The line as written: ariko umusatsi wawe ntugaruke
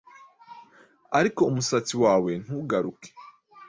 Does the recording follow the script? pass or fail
pass